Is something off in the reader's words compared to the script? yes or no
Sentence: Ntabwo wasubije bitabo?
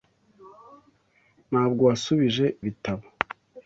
no